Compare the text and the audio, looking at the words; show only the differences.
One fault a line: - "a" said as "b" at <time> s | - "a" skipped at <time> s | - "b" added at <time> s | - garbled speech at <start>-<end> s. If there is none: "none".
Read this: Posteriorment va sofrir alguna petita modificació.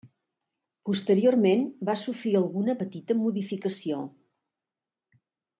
none